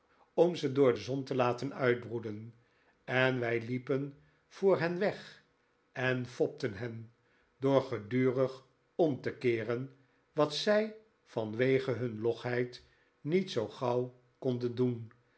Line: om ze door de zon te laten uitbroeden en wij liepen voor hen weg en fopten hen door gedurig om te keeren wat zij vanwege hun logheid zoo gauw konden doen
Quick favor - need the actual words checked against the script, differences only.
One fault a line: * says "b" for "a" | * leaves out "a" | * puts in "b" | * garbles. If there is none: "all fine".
* puts in "niet"